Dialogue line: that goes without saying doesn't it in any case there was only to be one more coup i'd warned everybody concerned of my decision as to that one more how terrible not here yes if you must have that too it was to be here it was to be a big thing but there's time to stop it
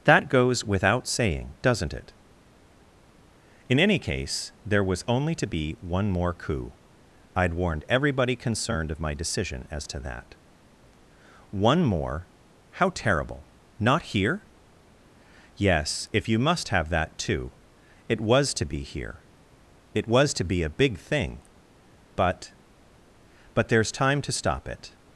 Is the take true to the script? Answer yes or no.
no